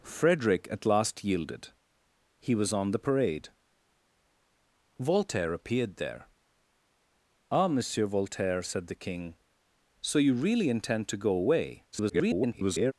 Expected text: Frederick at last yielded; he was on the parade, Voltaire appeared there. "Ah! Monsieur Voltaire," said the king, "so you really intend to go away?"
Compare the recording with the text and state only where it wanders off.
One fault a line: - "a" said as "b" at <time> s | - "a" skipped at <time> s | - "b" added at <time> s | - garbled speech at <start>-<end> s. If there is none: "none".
- garbled speech at 11.9-12.9 s